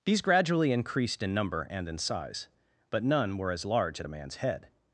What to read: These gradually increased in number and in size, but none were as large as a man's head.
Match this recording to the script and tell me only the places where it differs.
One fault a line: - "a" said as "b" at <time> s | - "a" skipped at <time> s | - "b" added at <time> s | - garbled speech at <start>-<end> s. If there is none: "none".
- "as" said as "at" at 4.0 s